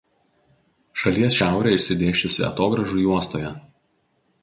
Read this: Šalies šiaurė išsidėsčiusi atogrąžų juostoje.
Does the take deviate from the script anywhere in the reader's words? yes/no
no